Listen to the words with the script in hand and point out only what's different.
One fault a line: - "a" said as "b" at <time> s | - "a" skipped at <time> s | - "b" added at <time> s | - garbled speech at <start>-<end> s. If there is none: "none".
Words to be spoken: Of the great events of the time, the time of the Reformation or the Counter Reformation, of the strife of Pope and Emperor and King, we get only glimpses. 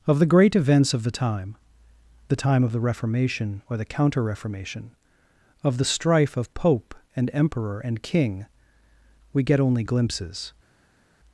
none